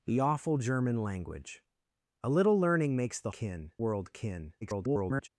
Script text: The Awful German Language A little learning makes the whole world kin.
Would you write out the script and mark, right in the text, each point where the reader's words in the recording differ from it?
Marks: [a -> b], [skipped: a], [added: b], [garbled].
The Awful German Language A little learning makes the [whole -> kin] world kin. [garbled]